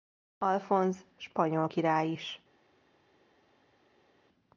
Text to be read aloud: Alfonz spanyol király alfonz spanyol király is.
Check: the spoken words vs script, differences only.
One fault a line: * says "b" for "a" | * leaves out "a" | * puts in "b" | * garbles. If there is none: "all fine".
* leaves out "alfonz spanyol király"